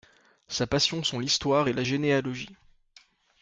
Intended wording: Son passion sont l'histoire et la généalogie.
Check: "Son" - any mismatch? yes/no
yes